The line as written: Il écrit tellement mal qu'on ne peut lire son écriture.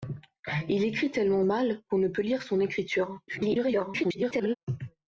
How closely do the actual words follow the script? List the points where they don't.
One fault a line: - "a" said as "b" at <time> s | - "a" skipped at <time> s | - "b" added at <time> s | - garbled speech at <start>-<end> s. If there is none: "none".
- garbled speech at 3.3-4.5 s